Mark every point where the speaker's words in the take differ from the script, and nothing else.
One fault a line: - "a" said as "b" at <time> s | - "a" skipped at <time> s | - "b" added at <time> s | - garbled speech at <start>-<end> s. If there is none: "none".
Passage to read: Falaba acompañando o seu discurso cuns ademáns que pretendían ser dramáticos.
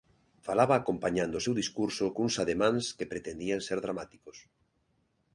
none